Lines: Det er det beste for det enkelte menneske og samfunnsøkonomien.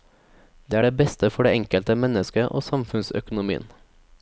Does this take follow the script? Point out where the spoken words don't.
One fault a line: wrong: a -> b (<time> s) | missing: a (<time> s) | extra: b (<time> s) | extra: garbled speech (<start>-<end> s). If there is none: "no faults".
no faults